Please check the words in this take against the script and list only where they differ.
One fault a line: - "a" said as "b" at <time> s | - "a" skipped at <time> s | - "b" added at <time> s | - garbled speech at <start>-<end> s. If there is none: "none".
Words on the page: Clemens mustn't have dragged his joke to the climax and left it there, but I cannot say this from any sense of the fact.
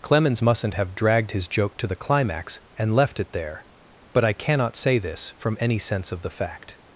none